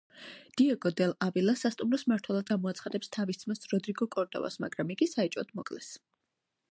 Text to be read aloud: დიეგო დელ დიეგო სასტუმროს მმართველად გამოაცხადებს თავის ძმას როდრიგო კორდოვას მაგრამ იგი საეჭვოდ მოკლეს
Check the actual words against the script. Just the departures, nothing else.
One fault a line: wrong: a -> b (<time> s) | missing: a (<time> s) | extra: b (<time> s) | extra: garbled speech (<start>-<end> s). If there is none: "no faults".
wrong: დიეგო -> ავილა (1.2 s)